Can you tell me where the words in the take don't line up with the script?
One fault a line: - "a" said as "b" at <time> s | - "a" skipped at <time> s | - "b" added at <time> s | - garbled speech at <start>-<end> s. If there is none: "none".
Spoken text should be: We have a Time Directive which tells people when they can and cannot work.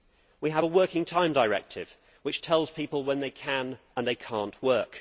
- "Working" added at 0.7 s